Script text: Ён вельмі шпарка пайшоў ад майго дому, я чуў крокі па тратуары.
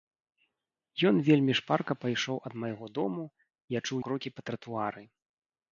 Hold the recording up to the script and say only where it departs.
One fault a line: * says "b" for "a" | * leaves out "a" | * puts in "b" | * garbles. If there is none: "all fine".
all fine